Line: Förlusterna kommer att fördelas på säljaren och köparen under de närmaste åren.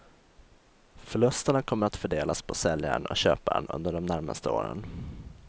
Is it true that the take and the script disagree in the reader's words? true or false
false